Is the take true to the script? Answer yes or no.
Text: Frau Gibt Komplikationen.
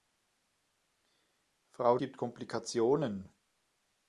yes